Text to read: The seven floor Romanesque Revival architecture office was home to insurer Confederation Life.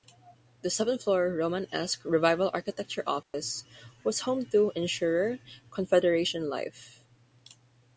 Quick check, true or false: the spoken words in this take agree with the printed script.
true